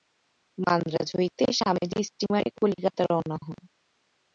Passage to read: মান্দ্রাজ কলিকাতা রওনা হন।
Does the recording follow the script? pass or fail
fail